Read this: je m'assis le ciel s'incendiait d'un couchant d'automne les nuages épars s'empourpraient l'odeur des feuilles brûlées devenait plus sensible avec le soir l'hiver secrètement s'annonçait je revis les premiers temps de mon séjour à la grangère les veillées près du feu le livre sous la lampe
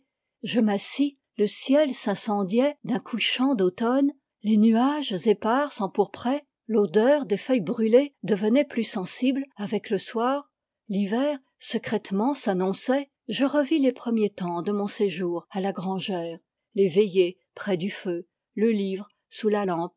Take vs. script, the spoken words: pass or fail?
pass